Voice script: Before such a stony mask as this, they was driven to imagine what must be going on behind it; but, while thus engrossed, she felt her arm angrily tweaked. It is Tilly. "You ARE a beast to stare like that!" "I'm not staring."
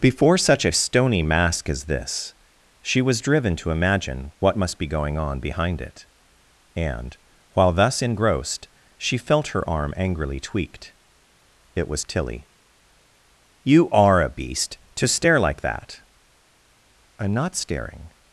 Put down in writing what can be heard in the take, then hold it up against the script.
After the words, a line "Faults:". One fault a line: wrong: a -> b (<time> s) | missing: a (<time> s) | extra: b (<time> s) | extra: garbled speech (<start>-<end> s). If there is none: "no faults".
Before such a stony mask as this, she was driven to imagine what must be going on behind it; and, while thus engrossed, she felt her arm angrily tweaked. It was Tilly. "You ARE a beast to stare like that!" "I'm not staring."
Faults:
wrong: they -> she (2.8 s)
wrong: but -> and (6.7 s)
wrong: is -> was (11.9 s)